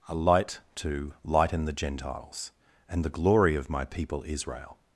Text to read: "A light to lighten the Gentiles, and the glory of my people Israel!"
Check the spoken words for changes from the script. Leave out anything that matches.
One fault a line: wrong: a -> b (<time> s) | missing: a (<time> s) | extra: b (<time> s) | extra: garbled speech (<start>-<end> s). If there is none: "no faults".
no faults